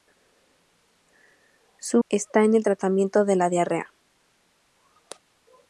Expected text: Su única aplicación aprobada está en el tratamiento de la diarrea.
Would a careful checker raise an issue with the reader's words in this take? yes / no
yes